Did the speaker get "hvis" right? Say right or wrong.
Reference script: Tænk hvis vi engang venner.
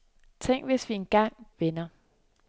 right